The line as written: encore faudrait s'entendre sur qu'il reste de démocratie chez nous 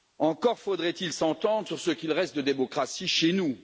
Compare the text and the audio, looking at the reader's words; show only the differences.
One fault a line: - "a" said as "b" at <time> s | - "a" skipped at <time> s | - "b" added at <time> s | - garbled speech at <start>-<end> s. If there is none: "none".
- "il" added at 0.9 s
- "ce" added at 1.8 s